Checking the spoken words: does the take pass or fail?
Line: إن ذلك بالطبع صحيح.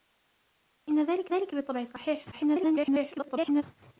fail